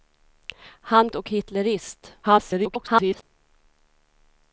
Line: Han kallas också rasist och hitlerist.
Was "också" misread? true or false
true